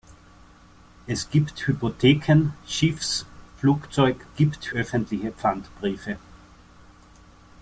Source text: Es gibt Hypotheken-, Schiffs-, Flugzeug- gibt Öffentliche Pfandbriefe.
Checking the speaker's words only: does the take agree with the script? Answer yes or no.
yes